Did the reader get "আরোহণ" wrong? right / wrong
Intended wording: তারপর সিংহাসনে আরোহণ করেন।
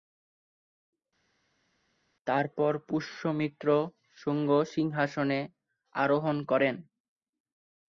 right